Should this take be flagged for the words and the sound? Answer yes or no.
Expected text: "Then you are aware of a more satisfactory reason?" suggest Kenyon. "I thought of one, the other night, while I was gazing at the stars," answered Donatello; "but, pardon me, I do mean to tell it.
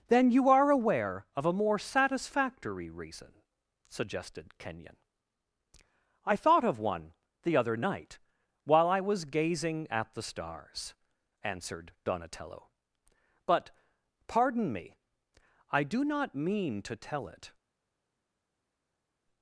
yes